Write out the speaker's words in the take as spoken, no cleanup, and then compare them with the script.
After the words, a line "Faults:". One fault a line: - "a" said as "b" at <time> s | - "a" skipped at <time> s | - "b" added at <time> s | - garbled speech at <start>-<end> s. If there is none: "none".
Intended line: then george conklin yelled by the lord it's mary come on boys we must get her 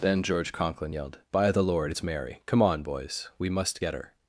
then george conklin yelled by the lord it's mary come on boys we must get her
Faults:
none